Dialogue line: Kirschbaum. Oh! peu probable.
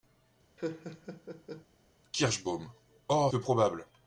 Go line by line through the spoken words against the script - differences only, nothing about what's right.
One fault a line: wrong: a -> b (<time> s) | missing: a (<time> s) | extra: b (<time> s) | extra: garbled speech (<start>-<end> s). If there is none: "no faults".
no faults